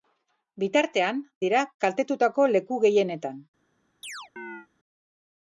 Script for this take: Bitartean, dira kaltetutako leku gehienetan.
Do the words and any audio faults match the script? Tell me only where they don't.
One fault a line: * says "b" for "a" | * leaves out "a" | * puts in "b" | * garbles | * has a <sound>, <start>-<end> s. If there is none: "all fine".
* has a chirp, 4.0-4.7 s